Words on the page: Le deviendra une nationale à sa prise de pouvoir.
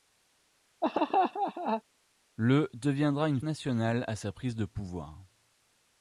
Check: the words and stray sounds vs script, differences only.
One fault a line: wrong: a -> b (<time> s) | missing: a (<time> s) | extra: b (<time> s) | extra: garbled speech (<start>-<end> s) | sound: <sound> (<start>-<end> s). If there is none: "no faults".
sound: laugh (0.8-1.8 s)